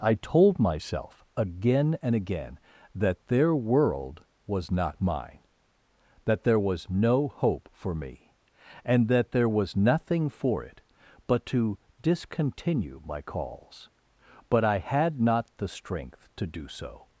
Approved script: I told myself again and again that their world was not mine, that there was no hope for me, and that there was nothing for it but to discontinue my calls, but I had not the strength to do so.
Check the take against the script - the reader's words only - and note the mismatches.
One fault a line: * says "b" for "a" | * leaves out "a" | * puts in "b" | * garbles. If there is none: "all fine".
all fine